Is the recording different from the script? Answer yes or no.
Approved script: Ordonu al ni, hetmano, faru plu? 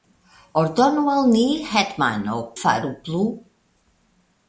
no